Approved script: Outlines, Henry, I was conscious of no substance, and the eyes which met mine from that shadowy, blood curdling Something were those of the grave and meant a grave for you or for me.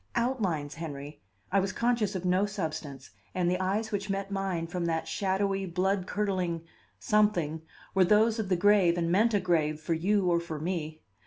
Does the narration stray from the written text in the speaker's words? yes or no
no